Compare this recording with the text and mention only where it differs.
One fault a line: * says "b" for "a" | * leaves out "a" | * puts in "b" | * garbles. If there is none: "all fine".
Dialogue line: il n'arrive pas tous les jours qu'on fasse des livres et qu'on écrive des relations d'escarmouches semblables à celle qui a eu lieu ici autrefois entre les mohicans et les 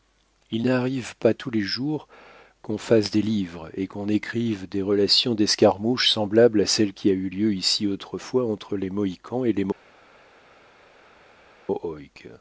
all fine